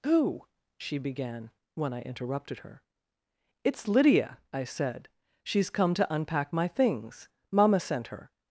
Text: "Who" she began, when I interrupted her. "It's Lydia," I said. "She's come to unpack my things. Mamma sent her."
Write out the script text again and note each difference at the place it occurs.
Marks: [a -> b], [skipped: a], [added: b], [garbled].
"Who" she began, when I interrupted her. "It's Lydia," I said. "She's come to unpack my things. Mamma sent her."